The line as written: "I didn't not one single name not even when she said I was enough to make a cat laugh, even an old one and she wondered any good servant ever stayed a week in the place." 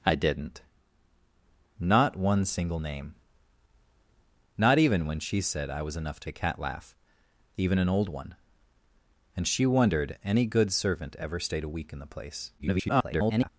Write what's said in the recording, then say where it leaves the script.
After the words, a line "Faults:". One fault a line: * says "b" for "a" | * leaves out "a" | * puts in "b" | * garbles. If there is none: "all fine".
"I didn't not one single name not even when she said I was enough to a cat laugh, even an old one and she wondered any good servant ever stayed a week in the place." [garbled]
Faults:
* leaves out "make"
* garbles